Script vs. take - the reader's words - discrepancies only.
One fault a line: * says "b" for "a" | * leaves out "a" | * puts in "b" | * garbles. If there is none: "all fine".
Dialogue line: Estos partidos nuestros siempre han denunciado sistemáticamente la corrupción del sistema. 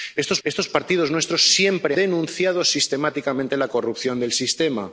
* puts in "estos"
* leaves out "han"